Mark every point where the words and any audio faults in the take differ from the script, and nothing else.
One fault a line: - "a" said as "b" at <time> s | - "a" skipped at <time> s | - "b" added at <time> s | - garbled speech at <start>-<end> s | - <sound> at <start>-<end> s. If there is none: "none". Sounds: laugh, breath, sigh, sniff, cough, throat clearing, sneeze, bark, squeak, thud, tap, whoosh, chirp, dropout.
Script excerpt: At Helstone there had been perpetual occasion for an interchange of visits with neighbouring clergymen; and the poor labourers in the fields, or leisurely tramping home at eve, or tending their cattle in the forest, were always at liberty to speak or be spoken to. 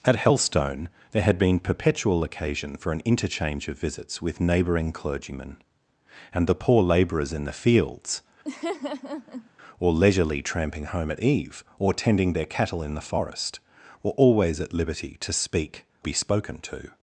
- laugh at 8.4-9.5 s
- "or" skipped at 15.8 s